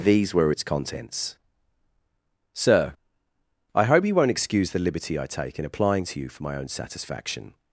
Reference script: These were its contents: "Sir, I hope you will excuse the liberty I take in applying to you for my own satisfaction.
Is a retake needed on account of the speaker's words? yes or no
yes